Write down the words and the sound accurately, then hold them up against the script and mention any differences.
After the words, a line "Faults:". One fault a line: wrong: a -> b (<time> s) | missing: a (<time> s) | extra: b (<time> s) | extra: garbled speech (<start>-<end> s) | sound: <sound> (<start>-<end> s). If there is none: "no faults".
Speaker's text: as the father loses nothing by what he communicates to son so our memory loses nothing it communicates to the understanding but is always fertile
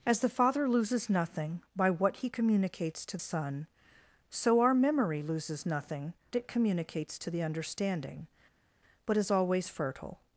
as the father loses nothing by what he communicates to son so our memory loses nothing it communicates to the understanding but is always fertile
Faults:
no faults